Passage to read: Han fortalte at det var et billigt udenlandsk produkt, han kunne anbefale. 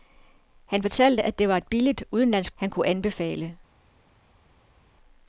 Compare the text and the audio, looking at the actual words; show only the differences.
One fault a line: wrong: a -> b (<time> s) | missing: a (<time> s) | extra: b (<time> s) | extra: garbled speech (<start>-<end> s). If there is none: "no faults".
missing: produkt (2.5 s)